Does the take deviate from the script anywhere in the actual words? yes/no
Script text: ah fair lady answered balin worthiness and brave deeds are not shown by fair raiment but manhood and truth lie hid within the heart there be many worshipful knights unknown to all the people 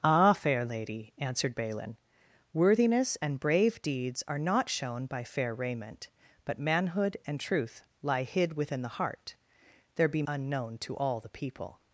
yes